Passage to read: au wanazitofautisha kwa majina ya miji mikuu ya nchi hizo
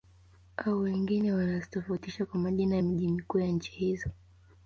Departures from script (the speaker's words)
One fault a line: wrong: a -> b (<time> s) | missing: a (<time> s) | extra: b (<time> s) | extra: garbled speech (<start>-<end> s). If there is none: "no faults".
extra: wengine (0.8 s)